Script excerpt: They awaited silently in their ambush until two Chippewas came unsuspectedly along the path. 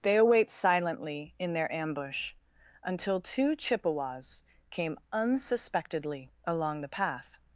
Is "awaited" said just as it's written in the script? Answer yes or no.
no